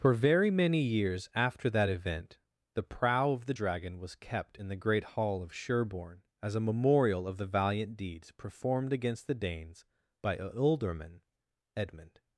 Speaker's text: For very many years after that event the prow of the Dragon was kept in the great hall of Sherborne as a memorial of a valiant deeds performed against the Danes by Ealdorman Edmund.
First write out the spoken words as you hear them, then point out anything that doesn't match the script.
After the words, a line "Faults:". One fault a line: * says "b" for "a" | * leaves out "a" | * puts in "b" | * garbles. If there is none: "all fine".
For very many years after that event the prow of the Dragon was kept in the great hall of Sherborne as a memorial of the valiant deeds performed against the Danes by Ealdorman Edmund.
Faults:
* says "the" for "a"